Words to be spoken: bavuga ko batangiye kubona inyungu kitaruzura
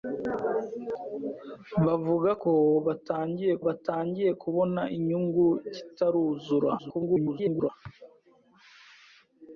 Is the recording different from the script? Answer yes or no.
yes